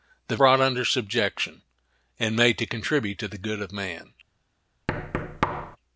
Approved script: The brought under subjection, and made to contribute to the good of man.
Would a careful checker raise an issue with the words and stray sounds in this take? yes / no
yes